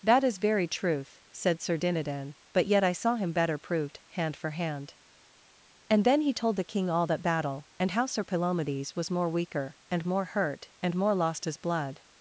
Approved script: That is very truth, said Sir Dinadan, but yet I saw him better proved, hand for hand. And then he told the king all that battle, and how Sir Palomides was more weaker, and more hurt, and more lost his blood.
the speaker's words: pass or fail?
pass